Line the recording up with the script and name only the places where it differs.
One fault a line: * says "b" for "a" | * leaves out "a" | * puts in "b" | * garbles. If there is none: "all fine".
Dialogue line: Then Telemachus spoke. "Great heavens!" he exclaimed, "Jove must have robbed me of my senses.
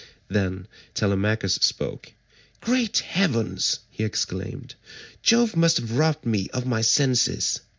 all fine